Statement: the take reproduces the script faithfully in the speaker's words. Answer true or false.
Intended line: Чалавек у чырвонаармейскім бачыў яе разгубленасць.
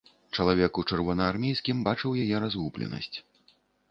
true